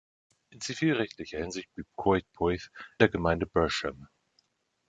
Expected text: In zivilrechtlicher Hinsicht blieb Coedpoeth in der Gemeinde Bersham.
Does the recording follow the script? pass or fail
fail